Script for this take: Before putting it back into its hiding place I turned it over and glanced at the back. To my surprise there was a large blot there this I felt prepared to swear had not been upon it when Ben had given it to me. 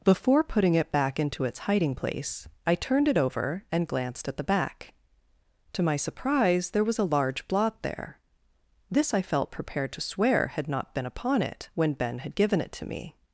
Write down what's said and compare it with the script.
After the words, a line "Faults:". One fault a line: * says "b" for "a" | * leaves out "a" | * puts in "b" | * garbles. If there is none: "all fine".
Before putting it back into its hiding place I turned it over and glanced at the back. To my surprise there was a large blot there this I felt prepared to swear had not been upon it when Ben had given it to me.
Faults:
all fine